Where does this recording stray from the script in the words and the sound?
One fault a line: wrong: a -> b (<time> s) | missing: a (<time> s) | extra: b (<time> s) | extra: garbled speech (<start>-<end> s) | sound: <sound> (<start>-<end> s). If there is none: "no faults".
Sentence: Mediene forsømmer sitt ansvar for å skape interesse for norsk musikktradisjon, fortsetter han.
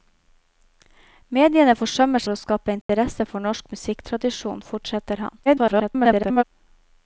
missing: sitt ansvar (2.2 s)
sound: dropout (2.8-2.9 s)
extra: garbled speech (5.5-6.4 s)